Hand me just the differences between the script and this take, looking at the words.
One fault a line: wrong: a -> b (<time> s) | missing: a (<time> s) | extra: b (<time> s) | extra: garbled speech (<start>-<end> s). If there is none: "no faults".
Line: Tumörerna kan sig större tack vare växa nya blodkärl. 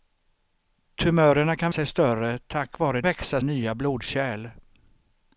no faults